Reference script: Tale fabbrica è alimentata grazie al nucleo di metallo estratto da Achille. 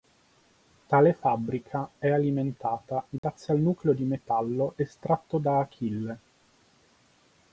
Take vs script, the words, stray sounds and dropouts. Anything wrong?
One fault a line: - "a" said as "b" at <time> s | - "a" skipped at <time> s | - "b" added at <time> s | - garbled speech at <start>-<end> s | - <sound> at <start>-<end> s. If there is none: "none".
- dropout at 3.2-3.2 s